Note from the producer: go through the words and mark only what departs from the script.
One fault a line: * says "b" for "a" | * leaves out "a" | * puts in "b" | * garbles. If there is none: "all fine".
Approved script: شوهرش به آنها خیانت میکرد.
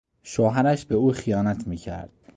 * says "او" for "آنها"